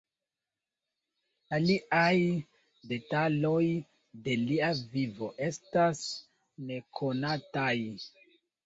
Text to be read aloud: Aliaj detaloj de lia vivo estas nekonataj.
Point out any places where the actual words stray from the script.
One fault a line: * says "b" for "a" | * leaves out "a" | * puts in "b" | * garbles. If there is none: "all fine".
all fine